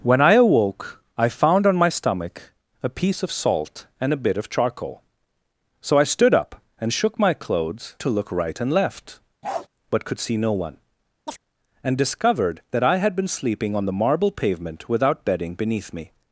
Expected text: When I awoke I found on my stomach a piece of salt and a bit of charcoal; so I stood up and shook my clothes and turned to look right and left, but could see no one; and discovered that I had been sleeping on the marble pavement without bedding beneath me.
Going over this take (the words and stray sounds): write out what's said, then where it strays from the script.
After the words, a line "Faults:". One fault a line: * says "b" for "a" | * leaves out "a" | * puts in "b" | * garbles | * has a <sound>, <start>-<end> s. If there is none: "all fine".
When I awoke I found on my stomach a piece of salt and a bit of charcoal; so I stood up and shook my clothes to look right and left, but could see no one; and discovered that I had been sleeping on the marble pavement without bedding beneath me.
Faults:
* leaves out "and turned"
* has a bark, 9.4-9.7 s
* has a chirp, 11.3-11.4 s